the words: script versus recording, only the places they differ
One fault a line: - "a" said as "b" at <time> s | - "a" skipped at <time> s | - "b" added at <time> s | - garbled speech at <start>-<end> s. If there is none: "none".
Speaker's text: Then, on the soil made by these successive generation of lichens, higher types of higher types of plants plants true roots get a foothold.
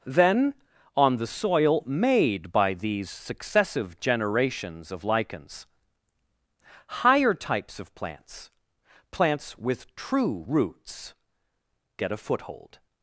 - "generation" said as "generations" at 4.0 s
- "higher types of" said as "plants" at 8.0 s
- "plants" said as "with" at 9.6 s